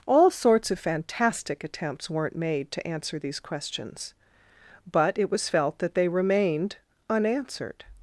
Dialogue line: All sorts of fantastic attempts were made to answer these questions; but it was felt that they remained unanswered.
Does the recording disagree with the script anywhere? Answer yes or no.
yes